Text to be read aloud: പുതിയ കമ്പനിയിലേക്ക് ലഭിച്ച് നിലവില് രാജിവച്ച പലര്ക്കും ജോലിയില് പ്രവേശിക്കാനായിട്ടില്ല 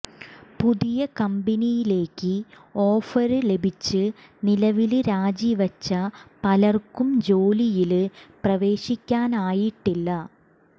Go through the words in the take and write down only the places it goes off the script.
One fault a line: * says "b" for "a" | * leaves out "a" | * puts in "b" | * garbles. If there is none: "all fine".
* puts in "ഓഫര്"